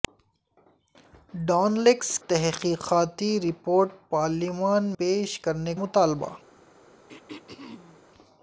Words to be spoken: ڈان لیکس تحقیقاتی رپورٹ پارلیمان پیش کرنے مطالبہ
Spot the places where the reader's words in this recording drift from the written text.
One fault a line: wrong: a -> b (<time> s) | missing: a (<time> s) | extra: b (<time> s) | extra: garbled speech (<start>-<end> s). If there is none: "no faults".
no faults